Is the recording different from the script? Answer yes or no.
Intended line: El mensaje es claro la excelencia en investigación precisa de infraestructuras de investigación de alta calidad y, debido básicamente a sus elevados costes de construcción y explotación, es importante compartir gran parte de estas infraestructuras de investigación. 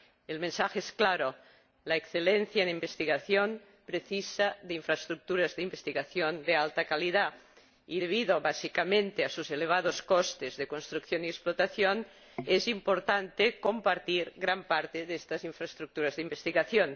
no